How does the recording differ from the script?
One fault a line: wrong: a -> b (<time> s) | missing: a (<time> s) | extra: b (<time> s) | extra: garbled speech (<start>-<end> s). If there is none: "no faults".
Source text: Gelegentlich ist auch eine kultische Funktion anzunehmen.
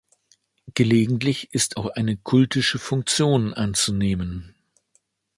no faults